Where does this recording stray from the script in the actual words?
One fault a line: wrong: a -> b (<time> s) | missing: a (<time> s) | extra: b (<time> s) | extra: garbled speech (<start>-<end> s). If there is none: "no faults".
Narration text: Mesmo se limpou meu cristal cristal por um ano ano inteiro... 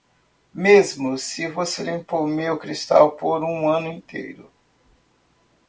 extra: você (1.5 s)
missing: cristal (3.1 s)
missing: ano (3.9 s)